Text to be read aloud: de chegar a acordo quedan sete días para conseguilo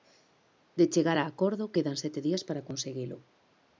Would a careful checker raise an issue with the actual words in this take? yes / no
no